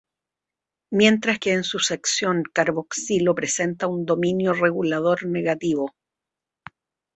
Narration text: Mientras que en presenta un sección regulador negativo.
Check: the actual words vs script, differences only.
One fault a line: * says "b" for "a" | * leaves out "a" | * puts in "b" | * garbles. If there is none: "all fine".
* puts in "su sección carboxilo"
* says "dominio" for "sección"